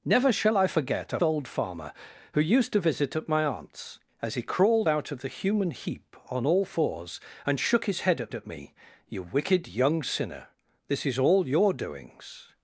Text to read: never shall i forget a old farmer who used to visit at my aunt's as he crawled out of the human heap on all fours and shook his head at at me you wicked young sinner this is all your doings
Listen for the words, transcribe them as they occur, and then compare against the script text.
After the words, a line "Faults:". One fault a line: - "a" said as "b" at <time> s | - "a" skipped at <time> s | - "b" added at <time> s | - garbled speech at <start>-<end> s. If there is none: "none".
never shall i forget a old farmer who used to visit at my aunt's as he crawled out of the human heap on all fours and shook his head at at me you wicked young sinner this is all your doings
Faults:
none